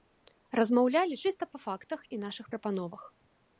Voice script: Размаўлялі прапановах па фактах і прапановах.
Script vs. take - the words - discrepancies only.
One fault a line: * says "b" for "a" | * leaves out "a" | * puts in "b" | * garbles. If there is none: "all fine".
* says "чыста" for "прапановах"
* puts in "нашых"